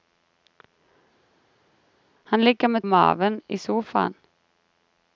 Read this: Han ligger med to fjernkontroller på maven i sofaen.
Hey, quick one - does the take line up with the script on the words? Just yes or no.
no